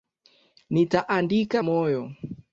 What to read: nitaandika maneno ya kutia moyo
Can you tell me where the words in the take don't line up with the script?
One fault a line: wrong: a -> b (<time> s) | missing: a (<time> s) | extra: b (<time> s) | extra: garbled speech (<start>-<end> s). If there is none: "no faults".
missing: maneno ya kutia (1.6 s)